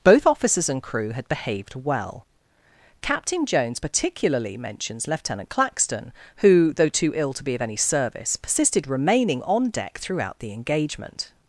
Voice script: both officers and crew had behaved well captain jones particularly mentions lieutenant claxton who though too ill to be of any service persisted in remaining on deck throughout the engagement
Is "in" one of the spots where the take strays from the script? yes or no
yes